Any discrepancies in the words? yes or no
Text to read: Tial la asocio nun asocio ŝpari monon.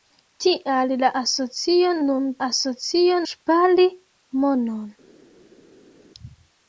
no